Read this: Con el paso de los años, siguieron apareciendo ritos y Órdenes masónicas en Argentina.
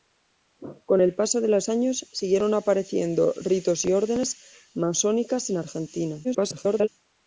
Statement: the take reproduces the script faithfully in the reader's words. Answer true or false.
false